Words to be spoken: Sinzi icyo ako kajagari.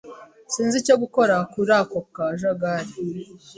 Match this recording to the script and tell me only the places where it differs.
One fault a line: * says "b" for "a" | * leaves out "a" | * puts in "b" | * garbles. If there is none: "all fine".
* puts in "gukora kuri"